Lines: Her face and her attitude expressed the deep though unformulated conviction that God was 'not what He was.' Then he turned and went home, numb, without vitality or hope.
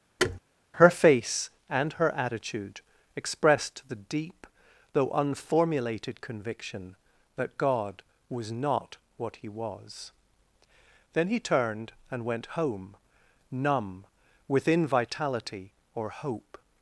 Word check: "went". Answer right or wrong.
right